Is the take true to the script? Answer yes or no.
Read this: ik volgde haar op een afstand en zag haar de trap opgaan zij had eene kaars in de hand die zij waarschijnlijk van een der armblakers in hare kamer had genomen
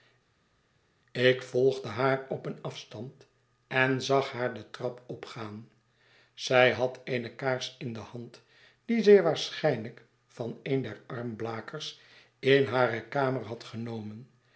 yes